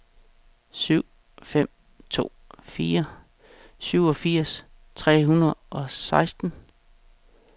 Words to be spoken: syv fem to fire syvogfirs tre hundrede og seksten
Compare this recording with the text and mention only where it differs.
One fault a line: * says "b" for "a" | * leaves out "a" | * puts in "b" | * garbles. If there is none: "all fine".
all fine